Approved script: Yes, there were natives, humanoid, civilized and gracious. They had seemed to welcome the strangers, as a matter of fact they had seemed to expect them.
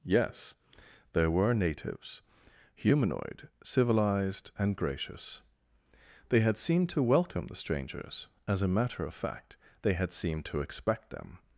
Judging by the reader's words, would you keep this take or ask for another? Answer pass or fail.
pass